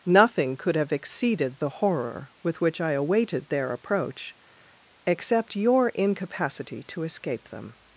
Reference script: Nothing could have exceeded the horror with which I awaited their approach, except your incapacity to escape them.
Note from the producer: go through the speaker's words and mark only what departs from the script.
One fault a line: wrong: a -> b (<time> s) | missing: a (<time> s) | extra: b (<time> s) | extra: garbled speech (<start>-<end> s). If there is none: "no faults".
no faults